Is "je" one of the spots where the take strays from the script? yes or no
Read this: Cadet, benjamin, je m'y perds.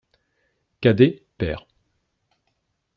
yes